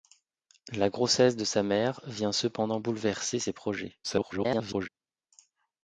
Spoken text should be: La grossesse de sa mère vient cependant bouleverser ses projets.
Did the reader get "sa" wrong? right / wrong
right